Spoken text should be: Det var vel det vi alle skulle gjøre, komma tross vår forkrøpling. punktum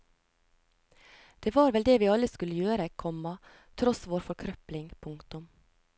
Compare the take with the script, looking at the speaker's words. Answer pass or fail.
pass